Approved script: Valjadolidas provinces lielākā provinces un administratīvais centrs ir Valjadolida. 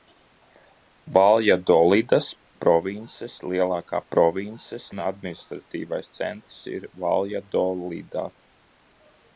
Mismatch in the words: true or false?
false